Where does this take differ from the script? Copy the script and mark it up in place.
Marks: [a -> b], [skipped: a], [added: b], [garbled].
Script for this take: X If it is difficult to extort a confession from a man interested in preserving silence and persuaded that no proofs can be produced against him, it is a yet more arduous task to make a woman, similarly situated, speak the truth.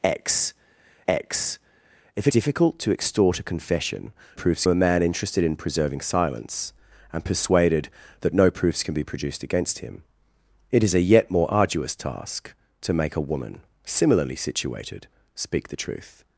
X [added: x] If it [skipped: is] difficult to extort a confession [from -> proofs] a man interested in preserving silence and persuaded that no proofs can be produced against him, it is a yet more arduous task to make a woman, similarly situated, speak the truth.